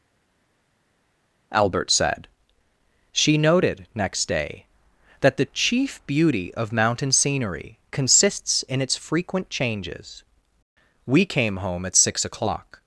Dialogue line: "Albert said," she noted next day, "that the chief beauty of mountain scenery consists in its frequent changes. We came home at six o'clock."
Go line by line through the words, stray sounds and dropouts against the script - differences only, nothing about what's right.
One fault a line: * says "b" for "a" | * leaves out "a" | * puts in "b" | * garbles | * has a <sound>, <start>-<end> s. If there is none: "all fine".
all fine